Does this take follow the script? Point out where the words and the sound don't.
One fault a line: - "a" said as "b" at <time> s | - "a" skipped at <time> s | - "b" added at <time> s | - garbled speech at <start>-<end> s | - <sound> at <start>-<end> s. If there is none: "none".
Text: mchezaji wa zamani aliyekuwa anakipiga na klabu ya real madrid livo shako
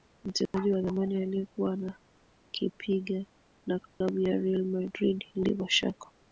- dropout at 0.5-0.5 s
- dropout at 3.9-4.0 s